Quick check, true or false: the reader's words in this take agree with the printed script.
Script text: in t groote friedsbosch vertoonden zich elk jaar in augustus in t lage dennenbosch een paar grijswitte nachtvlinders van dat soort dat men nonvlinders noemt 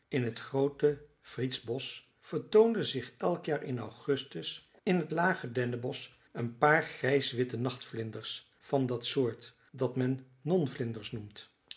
true